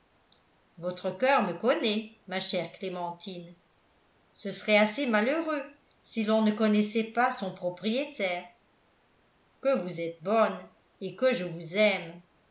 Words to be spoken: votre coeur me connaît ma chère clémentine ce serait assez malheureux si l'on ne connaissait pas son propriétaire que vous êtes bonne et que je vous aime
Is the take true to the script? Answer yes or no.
yes